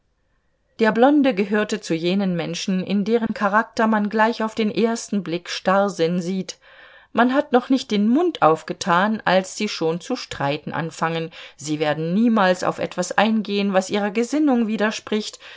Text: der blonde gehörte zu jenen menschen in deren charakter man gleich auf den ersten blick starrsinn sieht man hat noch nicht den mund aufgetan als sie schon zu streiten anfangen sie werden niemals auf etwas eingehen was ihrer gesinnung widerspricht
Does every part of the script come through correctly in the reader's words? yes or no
yes